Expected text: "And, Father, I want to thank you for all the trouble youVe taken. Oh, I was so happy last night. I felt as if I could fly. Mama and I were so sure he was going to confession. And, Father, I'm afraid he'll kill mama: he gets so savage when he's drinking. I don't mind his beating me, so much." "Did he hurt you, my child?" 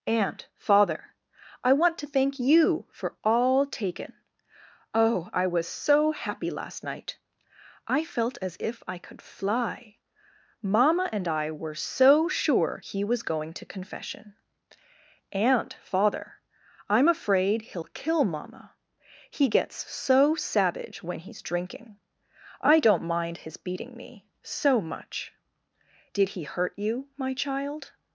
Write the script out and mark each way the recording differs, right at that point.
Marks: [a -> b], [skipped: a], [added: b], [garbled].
"And, Father, I want to thank you for all [skipped: the trouble youVe] taken. Oh, I was so happy last night. I felt as if I could fly. Mama and I were so sure he was going to confession. And, Father, I'm afraid he'll kill mama: he gets so savage when he's drinking. I don't mind his beating me, so much." "Did he hurt you, my child?"